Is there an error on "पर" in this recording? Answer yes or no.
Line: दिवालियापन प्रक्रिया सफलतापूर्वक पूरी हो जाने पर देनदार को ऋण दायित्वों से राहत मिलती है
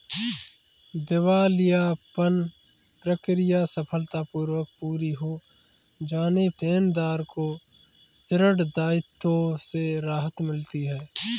yes